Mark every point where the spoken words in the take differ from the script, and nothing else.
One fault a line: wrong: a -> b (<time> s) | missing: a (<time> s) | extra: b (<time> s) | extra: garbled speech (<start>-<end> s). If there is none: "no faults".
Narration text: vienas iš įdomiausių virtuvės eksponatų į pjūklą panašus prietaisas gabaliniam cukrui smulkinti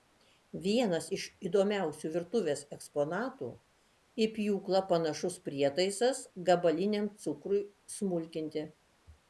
no faults